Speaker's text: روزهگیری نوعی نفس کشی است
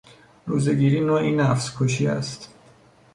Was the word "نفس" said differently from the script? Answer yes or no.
no